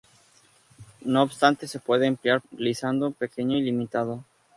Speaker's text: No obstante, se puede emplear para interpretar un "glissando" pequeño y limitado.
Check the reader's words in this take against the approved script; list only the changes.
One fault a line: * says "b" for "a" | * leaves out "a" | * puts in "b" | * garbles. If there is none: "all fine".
* leaves out "para interpretar un"